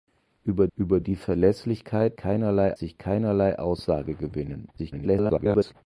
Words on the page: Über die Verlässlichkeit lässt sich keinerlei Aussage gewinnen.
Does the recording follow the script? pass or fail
fail